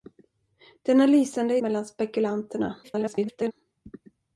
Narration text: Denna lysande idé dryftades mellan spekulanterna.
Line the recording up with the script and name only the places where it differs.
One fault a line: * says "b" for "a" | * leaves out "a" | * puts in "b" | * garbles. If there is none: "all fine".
* leaves out "idé dryftades"
* garbles